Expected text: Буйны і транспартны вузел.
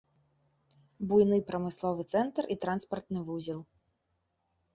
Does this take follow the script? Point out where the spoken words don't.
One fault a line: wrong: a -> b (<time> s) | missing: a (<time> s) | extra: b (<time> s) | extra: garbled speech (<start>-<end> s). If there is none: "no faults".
extra: прамысловы цэнтр (1.5 s)